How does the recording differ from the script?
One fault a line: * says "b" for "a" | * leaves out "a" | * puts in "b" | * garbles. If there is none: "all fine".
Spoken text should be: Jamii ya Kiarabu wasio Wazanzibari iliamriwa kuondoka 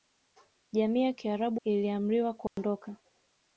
* leaves out "wasio Wazanzibari"